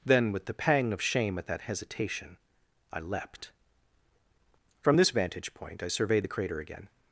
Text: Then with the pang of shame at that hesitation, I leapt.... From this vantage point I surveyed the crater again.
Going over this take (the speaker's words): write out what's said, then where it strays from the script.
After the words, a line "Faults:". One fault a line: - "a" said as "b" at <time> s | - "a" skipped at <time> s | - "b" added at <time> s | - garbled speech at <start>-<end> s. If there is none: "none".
Then with the pang of shame at that hesitation, I leapt.... From this vantage point I surveyed the crater again.
Faults:
none